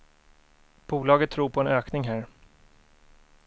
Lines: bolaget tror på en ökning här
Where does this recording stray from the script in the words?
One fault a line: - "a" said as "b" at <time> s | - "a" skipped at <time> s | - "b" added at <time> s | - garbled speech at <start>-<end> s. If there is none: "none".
none